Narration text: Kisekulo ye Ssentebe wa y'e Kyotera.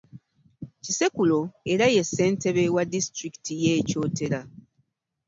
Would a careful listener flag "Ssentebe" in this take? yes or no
no